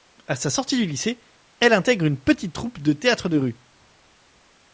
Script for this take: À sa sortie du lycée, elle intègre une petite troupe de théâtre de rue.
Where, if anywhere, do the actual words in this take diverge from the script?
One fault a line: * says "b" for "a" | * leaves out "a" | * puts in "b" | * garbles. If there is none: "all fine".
all fine